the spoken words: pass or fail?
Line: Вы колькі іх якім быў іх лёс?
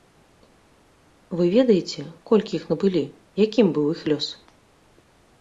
fail